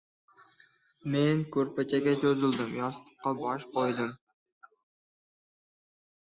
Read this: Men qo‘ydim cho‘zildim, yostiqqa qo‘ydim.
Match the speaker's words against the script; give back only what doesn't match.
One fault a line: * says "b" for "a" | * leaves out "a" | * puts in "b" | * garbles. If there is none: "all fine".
* says "ko‘rpachaga" for "qo‘ydim"
* puts in "bosh"